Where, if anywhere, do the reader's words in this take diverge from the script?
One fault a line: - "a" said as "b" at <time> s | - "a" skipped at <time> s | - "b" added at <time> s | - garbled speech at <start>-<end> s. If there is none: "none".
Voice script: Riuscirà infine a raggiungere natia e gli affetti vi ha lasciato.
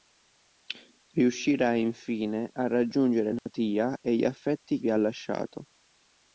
none